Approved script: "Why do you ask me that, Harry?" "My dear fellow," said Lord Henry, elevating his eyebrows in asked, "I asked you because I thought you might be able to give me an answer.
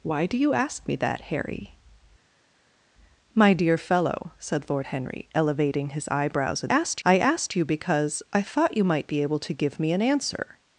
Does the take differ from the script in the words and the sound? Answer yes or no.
no